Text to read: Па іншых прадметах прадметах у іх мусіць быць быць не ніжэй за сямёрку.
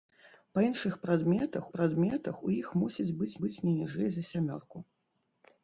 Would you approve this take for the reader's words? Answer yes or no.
yes